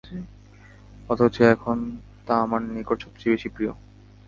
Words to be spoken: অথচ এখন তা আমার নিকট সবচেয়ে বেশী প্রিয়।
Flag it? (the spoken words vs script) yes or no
no